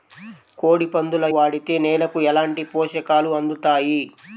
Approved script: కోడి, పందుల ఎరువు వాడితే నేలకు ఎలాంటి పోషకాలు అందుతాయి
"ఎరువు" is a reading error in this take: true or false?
true